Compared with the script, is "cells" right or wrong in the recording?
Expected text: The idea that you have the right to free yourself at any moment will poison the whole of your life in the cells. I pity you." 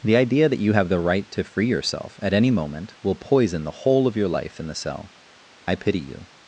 wrong